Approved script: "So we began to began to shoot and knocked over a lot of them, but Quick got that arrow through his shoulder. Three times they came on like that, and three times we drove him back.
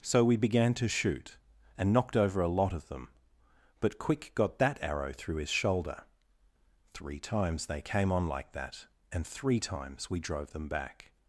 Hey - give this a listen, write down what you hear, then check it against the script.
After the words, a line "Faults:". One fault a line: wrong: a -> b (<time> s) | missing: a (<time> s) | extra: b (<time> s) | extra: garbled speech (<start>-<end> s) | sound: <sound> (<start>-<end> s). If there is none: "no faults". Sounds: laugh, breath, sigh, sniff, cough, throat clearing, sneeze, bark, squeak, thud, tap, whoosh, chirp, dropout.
"So we began to shoot and knocked over a lot of them, but Quick got that arrow through his shoulder. Three times they came on like that, and three times we drove them back.
Faults:
missing: began to (0.9 s)
wrong: him -> them (10.5 s)